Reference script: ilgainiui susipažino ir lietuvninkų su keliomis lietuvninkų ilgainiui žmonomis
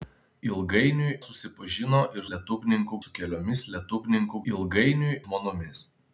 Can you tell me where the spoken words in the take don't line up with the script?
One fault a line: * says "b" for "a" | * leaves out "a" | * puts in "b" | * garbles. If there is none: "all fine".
all fine